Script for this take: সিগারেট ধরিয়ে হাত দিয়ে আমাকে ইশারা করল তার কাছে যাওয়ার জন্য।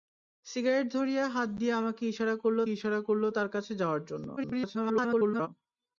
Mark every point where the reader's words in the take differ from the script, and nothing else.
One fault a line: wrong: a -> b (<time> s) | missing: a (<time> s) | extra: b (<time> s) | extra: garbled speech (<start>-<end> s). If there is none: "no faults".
extra: ইশারা করল (2.7 s)
extra: garbled speech (4.4-5.5 s)